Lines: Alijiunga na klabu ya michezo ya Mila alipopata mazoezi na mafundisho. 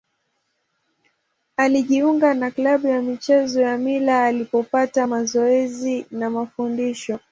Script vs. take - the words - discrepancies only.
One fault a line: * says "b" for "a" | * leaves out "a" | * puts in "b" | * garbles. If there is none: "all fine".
all fine